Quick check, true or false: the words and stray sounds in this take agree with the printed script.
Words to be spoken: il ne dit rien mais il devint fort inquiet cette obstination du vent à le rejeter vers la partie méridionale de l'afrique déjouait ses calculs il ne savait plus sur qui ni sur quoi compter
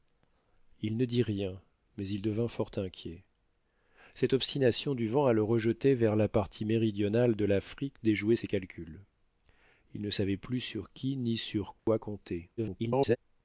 false